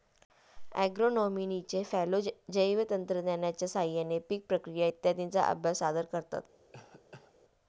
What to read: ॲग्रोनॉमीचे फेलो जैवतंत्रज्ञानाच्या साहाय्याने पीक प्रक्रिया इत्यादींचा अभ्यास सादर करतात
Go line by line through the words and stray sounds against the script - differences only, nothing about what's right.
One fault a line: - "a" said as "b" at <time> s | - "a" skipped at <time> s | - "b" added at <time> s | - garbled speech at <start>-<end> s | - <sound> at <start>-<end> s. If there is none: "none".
- cough at 6.7-7.3 s